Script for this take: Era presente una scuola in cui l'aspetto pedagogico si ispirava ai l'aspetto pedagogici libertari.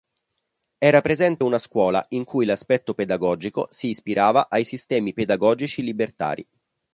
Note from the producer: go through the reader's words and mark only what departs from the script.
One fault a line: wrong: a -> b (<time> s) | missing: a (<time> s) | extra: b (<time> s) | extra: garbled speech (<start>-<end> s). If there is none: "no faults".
wrong: l'aspetto -> sistemi (4.6 s)